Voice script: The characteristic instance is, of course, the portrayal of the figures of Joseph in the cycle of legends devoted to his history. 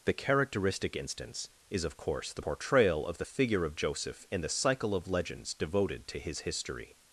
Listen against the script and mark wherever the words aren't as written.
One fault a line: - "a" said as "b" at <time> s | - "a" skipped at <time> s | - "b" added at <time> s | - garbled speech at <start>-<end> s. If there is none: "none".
- "figures" said as "figure" at 3.2 s